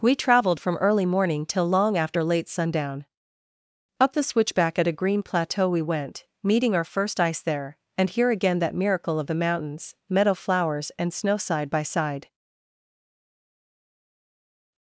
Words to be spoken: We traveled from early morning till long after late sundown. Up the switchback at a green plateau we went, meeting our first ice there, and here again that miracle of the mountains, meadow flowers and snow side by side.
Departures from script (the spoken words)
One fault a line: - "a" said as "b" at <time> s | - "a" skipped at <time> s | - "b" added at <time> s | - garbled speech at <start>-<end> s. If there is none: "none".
none